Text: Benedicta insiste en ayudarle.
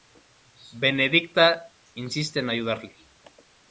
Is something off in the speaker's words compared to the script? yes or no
no